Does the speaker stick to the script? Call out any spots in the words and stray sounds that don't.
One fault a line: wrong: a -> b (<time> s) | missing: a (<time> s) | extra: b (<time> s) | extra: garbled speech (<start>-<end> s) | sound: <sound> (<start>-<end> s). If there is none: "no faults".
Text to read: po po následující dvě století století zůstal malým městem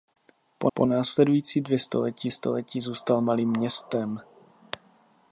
no faults